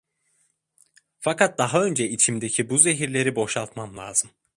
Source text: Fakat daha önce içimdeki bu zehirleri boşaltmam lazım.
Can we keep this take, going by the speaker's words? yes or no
yes